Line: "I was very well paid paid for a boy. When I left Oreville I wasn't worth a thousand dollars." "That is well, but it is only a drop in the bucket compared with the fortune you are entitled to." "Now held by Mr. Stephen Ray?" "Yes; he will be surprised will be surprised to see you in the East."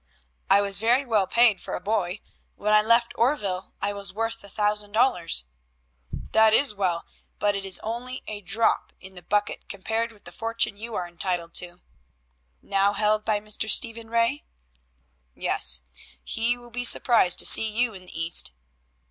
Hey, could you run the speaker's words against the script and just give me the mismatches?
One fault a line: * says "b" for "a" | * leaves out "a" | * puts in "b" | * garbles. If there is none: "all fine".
* leaves out "paid"
* says "was" for "wasn't"
* leaves out "will be surprised"